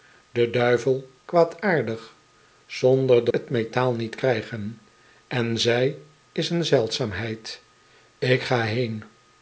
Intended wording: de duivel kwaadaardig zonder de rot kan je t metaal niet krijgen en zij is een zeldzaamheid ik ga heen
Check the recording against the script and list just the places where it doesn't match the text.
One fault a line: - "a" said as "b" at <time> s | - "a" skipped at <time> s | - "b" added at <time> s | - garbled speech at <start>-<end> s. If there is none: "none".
- "rot kan je" skipped at 3.3 s